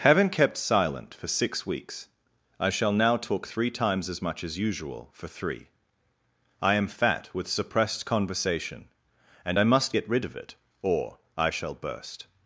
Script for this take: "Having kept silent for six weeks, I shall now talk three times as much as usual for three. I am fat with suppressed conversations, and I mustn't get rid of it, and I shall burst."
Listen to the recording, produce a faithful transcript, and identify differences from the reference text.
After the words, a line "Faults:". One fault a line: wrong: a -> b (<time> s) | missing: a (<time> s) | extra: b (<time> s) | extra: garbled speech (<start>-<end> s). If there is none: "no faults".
"Having kept silent for six weeks, I shall now talk three times as much as usual for three. I am fat with suppressed conversation, and I must get rid of it, or I shall burst."
Faults:
wrong: conversations -> conversation (8.0 s)
wrong: mustn't -> must (9.7 s)
wrong: and -> or (10.8 s)